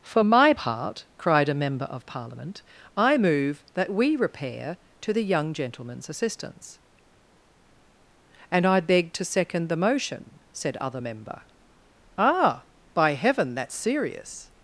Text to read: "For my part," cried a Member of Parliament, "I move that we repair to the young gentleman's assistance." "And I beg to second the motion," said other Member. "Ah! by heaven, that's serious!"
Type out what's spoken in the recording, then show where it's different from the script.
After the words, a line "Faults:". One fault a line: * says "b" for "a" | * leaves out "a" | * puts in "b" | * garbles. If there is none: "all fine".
"For my part," cried a Member of Parliament, "I move that we repair to the young gentleman's assistance." "And I beg to second the motion," said other Member. "Ah! by heaven, that's serious!"
Faults:
all fine